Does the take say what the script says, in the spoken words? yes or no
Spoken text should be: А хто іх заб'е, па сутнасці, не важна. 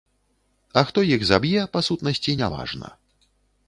yes